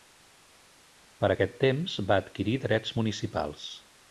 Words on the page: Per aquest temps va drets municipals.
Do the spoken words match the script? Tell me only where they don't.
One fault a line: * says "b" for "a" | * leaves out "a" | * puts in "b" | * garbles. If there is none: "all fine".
* puts in "adquirir"